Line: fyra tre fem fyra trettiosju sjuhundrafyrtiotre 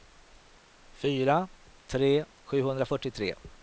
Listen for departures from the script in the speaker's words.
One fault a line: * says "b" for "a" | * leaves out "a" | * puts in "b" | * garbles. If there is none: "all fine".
* leaves out "fem fyra trettiosju"